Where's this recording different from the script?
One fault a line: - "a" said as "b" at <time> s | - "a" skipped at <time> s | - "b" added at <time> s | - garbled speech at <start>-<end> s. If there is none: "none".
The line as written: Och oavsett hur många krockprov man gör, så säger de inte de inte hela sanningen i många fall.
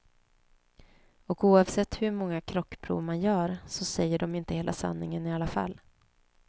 - "de inte" skipped at 4.5 s
- "många" said as "alla" at 5.3 s